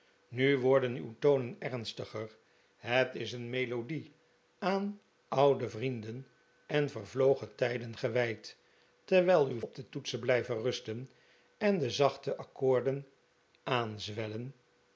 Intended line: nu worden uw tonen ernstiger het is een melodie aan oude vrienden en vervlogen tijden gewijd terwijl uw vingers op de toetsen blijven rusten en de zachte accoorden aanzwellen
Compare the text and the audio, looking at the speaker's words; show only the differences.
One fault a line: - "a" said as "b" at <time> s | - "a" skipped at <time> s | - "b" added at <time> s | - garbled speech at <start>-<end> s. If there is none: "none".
- "vingers" skipped at 9.6 s